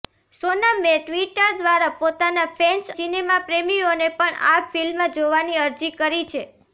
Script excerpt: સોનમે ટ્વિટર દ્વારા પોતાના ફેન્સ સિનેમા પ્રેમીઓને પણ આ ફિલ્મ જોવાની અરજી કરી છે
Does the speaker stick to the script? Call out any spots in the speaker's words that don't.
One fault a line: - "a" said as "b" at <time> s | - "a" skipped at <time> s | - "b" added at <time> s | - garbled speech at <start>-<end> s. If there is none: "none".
none